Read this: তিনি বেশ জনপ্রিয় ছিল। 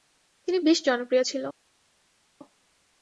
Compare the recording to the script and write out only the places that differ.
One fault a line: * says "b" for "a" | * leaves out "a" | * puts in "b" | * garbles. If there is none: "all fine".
all fine